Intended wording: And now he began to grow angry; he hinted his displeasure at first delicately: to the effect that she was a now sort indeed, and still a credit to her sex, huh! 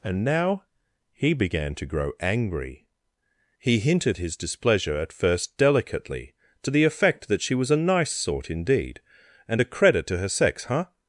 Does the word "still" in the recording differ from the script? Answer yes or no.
yes